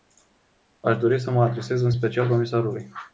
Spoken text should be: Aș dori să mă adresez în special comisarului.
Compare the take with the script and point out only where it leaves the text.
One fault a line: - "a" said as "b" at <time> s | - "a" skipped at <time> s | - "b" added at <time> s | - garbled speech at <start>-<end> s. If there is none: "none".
none